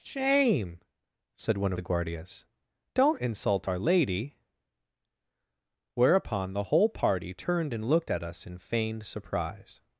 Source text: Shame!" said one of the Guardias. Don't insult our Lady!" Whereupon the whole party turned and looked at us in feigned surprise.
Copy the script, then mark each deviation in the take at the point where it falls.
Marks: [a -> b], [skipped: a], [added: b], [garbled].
Shame!" said one [skipped: of] the Guardias. Don't insult our Lady!" Whereupon the whole party turned and looked at us in feigned surprise.